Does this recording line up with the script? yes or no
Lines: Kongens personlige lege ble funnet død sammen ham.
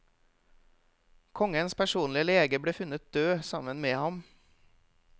no